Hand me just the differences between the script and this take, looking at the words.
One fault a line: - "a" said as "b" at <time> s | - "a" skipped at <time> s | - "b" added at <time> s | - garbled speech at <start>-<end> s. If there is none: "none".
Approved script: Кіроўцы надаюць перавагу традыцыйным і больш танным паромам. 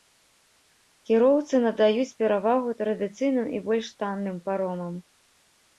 none